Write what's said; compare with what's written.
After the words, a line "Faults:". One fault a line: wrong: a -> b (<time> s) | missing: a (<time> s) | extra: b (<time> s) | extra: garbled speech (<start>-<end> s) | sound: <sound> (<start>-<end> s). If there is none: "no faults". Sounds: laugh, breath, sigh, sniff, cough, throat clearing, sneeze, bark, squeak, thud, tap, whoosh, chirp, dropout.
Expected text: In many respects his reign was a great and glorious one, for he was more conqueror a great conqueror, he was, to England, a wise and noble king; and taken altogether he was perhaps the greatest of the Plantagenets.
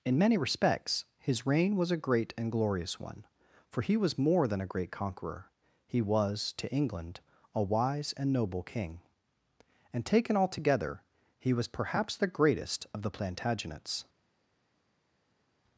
In many respects his reign was a great and glorious one, for he was more than a great conqueror, he was, to England, a wise and noble king; and taken altogether he was perhaps the greatest of the Plantagenets.
Faults:
wrong: conqueror -> than (4.5 s)